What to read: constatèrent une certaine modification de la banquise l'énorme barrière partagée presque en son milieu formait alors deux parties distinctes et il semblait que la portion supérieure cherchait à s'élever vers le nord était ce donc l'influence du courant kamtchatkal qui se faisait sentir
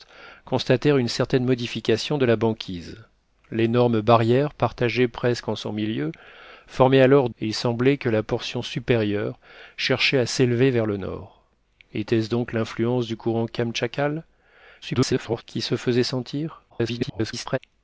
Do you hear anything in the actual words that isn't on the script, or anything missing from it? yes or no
yes